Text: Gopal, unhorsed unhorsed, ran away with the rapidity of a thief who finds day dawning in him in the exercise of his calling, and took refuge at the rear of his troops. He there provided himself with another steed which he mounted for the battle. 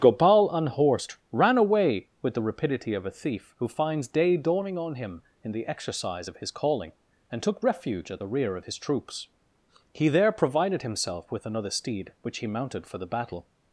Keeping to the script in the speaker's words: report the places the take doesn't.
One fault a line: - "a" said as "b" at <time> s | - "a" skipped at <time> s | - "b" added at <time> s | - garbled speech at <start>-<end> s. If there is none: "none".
- "unhorsed" skipped at 1.2 s
- "in" said as "on" at 4.8 s